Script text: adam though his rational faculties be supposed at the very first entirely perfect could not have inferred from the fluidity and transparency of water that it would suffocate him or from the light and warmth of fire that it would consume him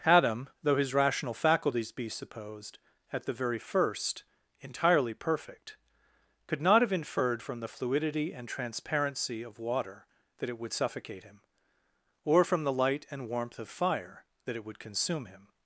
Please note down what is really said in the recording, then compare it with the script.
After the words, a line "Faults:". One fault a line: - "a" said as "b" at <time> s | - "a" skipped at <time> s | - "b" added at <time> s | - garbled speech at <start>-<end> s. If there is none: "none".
adam though his rational faculties be supposed at the very first entirely perfect could not have inferred from the fluidity and transparency of water that it would suffocate him or from the light and warmth of fire that it would consume him
Faults:
none